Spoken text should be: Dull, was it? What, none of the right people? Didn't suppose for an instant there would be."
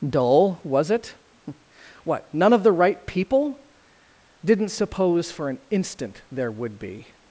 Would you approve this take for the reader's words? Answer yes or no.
yes